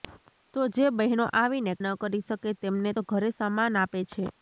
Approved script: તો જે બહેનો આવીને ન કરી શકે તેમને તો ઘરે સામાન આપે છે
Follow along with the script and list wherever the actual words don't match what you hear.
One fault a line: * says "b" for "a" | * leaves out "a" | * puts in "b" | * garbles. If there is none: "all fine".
all fine